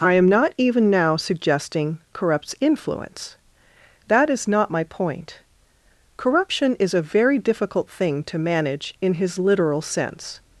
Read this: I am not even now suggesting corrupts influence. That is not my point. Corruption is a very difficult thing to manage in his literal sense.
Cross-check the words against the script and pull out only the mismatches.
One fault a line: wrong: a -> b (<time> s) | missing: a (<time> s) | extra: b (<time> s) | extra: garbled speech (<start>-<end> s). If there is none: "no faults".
no faults